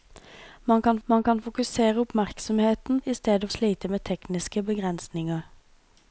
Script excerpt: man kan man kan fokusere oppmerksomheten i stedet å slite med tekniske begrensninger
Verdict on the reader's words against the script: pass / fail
pass